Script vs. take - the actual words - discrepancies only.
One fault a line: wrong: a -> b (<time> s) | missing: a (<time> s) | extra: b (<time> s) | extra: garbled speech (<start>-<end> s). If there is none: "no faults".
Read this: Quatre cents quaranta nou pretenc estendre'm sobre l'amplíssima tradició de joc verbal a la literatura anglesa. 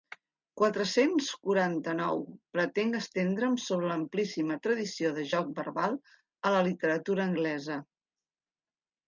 no faults